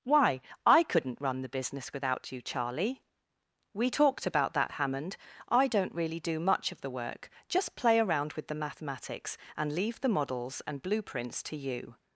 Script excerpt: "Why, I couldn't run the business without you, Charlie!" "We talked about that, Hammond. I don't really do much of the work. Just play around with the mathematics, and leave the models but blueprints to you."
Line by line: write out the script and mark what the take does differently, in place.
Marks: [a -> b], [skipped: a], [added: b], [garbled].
"Why, I couldn't run the business without you, Charlie!" "We talked about that, Hammond. I don't really do much of the work. Just play around with the mathematics, and leave the models [but -> and] blueprints to you."